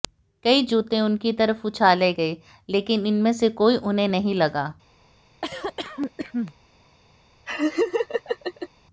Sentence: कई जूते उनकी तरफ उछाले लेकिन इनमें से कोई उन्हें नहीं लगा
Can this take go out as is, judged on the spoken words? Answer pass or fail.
fail